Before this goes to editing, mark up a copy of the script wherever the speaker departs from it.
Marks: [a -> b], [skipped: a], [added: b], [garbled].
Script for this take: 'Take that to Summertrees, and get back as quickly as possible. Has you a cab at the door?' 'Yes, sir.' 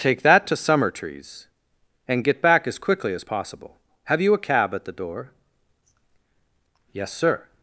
'Take that to Summertrees, and get back as quickly as possible. [Has -> Have] you a cab at the door?' 'Yes, sir.'